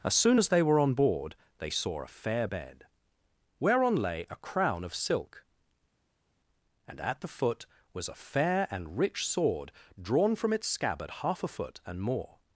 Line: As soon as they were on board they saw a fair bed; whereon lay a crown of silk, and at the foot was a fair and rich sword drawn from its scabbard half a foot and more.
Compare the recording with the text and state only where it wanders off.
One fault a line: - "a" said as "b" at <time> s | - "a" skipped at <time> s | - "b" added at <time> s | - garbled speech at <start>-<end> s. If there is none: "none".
none